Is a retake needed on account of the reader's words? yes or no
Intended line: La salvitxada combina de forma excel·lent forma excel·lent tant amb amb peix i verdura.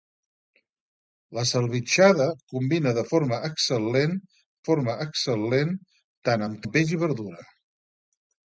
no